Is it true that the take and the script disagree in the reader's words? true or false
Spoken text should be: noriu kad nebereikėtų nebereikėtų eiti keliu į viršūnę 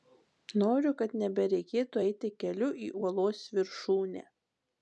true